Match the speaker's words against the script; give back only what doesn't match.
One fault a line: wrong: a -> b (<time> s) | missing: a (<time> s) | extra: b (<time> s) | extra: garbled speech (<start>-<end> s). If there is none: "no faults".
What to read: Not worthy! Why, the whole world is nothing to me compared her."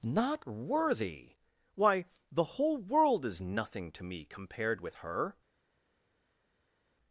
extra: with (4.8 s)